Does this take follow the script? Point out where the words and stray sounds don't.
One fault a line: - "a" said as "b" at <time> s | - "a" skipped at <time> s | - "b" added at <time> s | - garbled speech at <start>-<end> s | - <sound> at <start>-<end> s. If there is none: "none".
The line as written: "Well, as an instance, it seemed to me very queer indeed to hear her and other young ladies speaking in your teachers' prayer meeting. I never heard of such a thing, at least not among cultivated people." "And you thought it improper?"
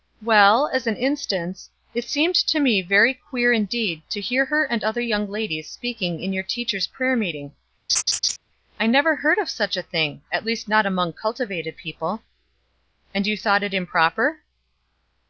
- laugh at 7.9-8.4 s